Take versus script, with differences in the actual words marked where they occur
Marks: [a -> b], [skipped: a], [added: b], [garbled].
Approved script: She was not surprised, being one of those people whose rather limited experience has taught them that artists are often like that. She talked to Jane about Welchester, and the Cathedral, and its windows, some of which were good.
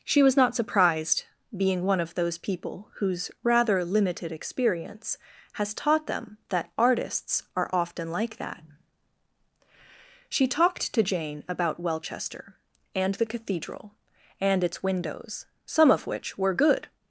She was not surprised, being one of those people whose rather limited experience has taught them that artists are often like that. She talked to Jane about Welchester, and the Cathedral, and its windows, some of which were good.